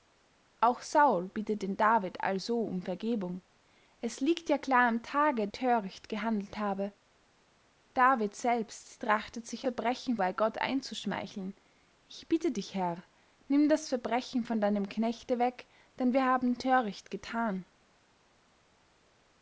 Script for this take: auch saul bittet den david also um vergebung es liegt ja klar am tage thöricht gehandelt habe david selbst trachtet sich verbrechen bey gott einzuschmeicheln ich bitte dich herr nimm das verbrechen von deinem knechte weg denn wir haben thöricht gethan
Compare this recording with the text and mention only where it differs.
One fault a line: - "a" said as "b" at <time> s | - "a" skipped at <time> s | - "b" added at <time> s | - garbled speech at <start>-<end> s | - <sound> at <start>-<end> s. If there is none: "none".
none